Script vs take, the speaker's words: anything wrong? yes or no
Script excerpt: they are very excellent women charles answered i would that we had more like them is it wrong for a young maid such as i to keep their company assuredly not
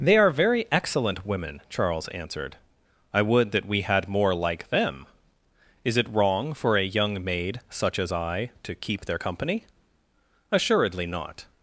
no